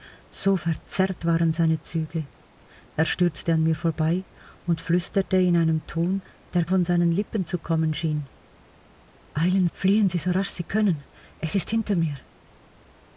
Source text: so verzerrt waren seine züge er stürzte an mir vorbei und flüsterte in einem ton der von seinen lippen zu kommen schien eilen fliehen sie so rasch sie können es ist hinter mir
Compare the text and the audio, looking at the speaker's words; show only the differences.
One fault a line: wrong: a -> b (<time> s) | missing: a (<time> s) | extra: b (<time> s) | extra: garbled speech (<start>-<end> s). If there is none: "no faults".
no faults